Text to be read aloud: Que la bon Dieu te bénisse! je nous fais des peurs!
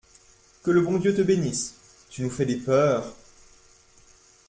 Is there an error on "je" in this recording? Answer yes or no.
yes